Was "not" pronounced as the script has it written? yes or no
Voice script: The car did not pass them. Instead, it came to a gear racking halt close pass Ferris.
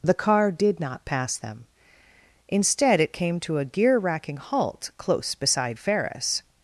yes